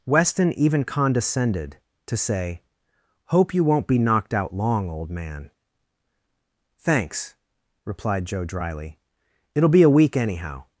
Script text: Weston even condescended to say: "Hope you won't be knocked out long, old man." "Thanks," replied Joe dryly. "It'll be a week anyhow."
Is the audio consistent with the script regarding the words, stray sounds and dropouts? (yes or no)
yes